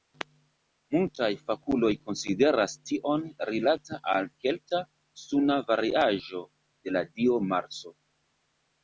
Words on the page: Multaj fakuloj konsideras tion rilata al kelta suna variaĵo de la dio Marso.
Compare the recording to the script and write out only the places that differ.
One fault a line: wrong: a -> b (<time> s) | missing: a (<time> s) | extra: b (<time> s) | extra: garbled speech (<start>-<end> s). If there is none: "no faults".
no faults